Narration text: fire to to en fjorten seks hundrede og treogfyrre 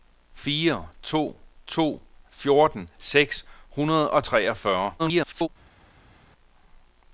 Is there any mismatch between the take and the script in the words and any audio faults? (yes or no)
yes